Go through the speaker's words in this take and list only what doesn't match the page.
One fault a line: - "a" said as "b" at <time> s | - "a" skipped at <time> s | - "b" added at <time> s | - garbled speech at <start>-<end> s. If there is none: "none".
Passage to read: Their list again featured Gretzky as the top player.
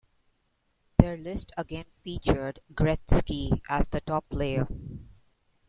none